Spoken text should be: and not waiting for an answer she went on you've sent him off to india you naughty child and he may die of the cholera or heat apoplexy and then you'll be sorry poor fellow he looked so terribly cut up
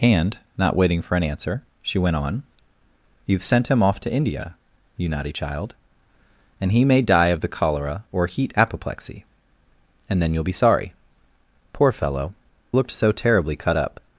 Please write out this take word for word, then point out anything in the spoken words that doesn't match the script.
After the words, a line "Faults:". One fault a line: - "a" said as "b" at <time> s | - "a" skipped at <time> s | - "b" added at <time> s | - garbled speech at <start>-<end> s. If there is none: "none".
and not waiting for an answer she went on you've sent him off to india you naughty child and he may die of the cholera or heat apoplexy and then you'll be sorry poor fellow looked so terribly cut up
Faults:
- "he" skipped at 12.3 s